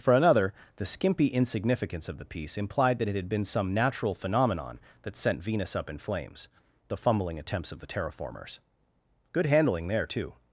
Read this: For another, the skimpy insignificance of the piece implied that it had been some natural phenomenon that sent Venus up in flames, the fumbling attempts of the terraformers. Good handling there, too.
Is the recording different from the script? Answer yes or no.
no